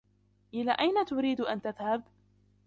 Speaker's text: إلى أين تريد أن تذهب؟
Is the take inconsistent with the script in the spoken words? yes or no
no